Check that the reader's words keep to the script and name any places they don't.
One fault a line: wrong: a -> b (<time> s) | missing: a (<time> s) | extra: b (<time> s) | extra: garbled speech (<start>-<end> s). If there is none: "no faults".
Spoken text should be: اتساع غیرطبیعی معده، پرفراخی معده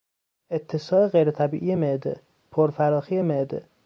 no faults